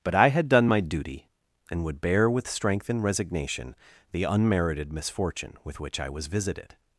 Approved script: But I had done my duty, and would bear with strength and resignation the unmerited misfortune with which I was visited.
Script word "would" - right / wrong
right